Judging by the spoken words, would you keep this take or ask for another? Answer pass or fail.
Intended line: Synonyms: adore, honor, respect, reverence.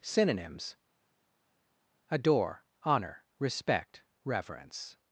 pass